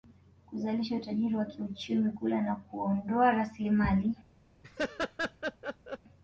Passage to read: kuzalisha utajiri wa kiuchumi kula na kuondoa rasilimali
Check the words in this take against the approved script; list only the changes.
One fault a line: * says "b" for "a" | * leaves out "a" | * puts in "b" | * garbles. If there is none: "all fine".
all fine